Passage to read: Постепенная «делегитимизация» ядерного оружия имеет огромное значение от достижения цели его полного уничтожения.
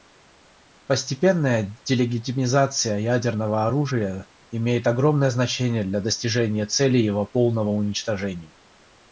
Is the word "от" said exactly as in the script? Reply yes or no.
no